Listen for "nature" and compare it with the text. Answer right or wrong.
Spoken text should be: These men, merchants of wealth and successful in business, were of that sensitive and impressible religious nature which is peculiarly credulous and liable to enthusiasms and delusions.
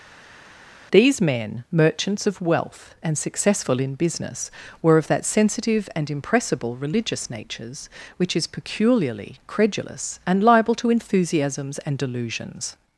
wrong